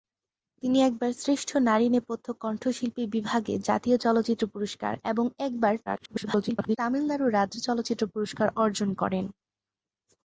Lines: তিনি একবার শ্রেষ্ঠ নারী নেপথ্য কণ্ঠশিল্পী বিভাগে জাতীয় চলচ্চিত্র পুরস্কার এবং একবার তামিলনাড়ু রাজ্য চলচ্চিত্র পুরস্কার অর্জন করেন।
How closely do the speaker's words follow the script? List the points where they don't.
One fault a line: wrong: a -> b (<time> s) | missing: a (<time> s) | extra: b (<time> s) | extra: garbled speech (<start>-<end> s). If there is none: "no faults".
extra: garbled speech (5.9-6.8 s)